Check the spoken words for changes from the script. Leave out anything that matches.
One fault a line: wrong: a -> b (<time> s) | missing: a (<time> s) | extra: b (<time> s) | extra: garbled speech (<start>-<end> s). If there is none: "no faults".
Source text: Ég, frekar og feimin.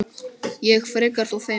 no faults